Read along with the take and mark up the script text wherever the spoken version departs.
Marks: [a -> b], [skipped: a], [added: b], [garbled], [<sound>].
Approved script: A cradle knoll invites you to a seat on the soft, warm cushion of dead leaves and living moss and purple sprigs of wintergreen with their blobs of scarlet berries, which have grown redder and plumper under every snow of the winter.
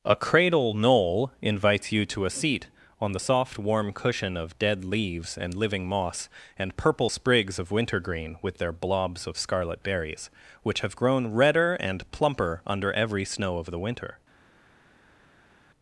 A cradle knoll invites you to a seat on the soft, warm cushion of dead leaves and living moss and purple sprigs of wintergreen with their blobs of scarlet berries, which have grown redder and plumper under every snow of the winter.